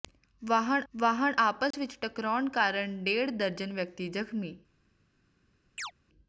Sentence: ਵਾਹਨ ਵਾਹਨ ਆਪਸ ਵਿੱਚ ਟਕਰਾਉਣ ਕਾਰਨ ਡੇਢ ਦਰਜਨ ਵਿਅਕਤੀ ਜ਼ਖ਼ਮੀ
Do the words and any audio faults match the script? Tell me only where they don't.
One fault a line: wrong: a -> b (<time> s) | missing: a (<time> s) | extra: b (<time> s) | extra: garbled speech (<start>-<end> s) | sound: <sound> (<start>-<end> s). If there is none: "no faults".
sound: dropout (1.7-1.7 s)
sound: chirp (5.8-5.9 s)